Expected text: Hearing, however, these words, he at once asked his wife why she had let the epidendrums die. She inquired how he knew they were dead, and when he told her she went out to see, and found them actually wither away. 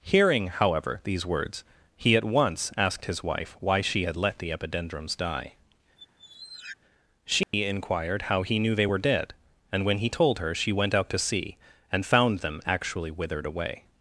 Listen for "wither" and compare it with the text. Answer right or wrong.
wrong